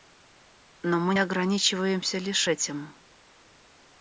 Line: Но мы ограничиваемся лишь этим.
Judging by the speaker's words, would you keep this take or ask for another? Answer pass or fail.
pass